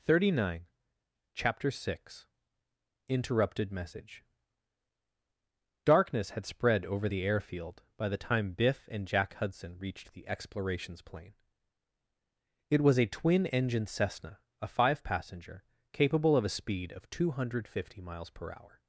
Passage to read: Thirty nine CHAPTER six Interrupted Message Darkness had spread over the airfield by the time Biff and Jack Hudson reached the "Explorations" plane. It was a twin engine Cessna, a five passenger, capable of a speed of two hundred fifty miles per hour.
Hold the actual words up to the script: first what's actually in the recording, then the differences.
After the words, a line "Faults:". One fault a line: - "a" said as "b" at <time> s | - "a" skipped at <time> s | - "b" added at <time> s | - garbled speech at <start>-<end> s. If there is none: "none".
Thirty nine CHAPTER six Interrupted Message Darkness had spread over the airfield by the time Biff and Jack Hudson reached the "Explorations" plane. It was a twin engine Cessna, a five passenger, capable of a speed of two hundred fifty miles per hour.
Faults:
none